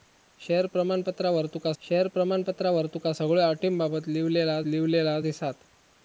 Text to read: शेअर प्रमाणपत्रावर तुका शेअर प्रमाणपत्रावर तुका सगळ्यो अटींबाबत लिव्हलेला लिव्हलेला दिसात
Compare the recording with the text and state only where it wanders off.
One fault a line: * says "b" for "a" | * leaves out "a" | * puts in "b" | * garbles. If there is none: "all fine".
all fine